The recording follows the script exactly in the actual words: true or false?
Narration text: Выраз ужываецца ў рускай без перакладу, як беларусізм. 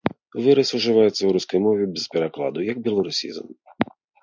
false